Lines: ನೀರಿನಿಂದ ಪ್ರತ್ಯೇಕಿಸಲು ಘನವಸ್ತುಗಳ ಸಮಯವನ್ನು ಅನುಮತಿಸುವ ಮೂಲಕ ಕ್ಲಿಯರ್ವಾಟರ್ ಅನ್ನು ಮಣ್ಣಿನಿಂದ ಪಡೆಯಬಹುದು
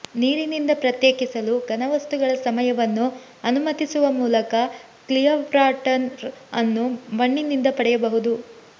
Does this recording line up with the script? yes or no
yes